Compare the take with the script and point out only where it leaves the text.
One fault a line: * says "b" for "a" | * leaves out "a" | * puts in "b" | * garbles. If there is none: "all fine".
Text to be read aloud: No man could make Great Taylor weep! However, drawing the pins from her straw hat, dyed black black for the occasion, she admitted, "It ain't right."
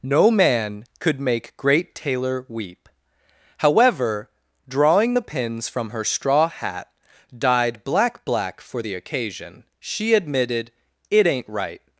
all fine